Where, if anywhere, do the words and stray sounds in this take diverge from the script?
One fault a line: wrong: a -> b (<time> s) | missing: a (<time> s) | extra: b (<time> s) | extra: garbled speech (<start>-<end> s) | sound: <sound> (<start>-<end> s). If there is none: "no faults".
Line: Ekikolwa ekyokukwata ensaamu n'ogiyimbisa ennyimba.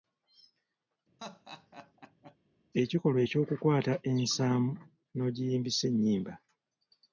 sound: laugh (1.2-2.4 s)